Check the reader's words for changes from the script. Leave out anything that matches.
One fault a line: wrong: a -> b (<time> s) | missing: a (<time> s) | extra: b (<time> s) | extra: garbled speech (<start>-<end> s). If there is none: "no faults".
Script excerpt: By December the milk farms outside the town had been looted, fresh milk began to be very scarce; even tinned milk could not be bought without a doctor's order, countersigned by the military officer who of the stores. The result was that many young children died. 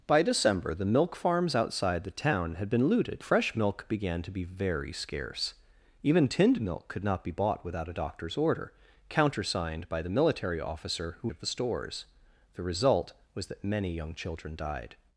no faults